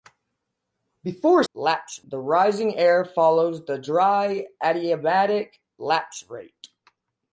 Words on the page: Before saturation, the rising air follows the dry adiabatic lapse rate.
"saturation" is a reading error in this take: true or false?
true